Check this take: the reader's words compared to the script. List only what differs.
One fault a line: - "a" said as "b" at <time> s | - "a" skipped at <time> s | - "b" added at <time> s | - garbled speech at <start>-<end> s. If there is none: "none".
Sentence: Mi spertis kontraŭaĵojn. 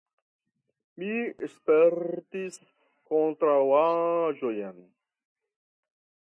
none